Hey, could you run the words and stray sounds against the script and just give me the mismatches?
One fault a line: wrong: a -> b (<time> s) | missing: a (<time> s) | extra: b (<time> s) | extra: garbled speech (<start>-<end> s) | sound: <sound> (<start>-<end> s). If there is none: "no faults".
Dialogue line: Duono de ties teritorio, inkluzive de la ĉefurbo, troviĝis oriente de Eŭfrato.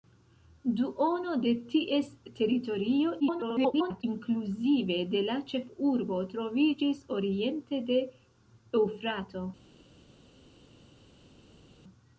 extra: garbled speech (3.2-4.0 s)